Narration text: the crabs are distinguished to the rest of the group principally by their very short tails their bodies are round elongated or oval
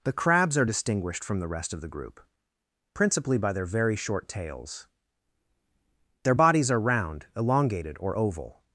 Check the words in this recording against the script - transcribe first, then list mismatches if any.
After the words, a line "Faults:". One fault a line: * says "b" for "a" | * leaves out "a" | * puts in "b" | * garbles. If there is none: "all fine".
the crabs are distinguished from the rest of the group principally by their very short tails their bodies are round elongated or oval
Faults:
* says "from" for "to"